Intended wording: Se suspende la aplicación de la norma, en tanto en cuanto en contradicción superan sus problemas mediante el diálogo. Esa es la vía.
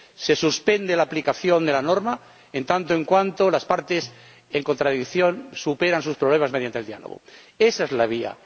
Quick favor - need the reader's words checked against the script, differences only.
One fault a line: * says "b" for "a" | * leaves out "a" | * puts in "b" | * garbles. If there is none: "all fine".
* puts in "las partes"